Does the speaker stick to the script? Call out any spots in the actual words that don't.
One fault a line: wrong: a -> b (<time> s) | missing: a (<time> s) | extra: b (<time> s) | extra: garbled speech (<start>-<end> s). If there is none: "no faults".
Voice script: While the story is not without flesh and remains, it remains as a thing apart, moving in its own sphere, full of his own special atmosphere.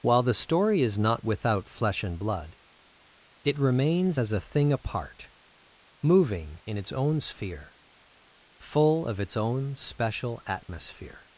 wrong: remains -> blood (2.2 s)
wrong: his -> its (9.2 s)